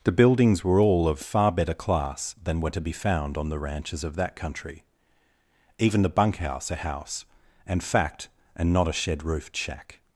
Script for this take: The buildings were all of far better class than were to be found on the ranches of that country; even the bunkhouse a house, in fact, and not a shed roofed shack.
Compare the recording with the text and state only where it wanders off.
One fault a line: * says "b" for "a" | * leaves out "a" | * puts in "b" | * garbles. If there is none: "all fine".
* says "and" for "in"